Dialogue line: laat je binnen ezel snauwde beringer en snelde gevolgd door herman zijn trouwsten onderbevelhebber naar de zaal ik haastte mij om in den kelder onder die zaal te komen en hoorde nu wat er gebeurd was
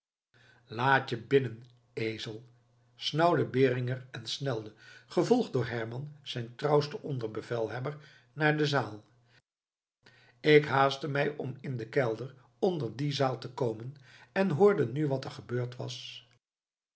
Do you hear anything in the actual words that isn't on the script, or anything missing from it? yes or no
no